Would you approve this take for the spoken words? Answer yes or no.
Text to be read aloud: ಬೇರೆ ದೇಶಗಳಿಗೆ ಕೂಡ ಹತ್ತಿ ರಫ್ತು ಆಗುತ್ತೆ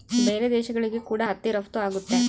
yes